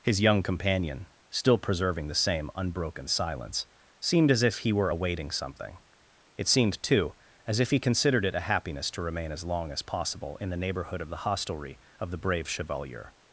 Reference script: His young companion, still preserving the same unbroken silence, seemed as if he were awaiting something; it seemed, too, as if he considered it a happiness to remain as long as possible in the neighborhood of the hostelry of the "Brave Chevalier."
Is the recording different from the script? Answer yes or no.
no